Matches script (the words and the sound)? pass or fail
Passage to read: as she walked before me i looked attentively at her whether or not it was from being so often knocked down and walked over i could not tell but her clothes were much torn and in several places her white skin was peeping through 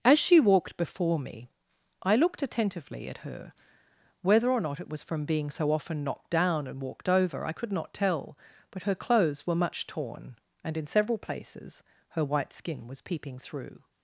pass